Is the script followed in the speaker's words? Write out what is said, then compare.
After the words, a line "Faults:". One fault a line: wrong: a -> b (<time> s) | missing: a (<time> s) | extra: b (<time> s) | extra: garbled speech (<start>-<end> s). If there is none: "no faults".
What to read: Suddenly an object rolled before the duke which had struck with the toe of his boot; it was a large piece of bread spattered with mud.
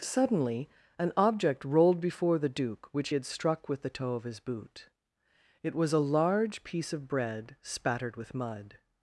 Suddenly an object rolled before the duke which had struck with the toe of his boot; it was a large piece of bread spattered with mud.
Faults:
no faults